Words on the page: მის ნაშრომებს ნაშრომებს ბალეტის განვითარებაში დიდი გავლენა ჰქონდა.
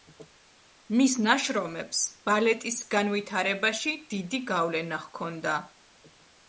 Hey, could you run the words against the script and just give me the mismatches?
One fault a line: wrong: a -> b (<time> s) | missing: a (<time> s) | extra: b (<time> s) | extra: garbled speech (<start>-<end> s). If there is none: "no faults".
missing: ნაშრომებს (2.0 s)